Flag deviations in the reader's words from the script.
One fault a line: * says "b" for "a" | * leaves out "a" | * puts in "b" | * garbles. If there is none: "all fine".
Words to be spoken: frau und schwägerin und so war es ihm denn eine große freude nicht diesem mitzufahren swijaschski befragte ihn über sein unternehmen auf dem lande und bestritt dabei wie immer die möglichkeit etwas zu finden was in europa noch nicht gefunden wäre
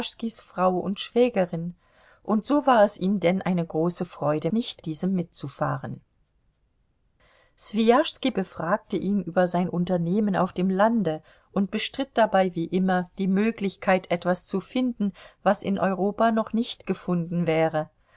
all fine